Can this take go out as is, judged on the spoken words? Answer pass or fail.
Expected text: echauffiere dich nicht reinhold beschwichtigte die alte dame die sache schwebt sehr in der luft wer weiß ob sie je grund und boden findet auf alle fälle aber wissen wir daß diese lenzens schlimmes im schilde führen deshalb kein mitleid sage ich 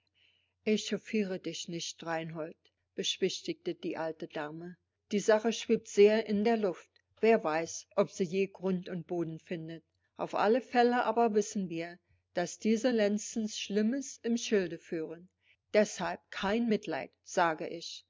pass